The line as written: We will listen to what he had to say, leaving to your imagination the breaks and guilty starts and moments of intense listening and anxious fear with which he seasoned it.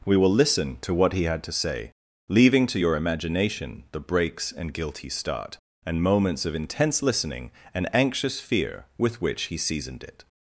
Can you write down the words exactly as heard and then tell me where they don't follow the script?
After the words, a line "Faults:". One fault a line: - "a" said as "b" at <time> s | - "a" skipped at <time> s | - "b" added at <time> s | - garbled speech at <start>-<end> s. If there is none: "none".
We will listen to what he had to say, leaving to your imagination the breaks and guilty start and moments of intense listening and anxious fear with which he seasoned it.
Faults:
- "starts" said as "start" at 5.1 s